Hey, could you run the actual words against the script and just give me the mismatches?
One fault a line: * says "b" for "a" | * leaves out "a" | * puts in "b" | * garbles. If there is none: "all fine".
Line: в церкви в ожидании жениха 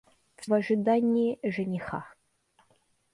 * leaves out "церкви"